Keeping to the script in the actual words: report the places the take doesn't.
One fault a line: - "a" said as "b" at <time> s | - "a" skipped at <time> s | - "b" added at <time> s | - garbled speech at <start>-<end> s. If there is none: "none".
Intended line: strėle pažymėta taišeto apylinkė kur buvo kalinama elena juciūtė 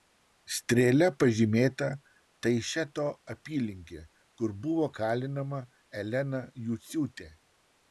none